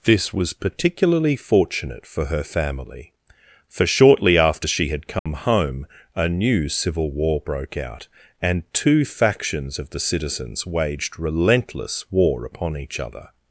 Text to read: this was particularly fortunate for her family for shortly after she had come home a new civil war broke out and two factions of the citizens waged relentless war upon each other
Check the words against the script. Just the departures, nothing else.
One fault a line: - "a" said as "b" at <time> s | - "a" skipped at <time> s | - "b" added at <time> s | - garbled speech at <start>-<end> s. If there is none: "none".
none